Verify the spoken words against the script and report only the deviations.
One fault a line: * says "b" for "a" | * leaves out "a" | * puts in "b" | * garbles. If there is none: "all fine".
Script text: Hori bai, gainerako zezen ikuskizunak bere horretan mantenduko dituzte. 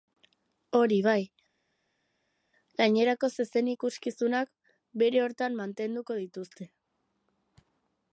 all fine